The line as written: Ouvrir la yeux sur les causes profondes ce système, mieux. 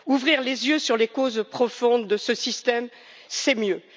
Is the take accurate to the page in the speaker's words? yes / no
no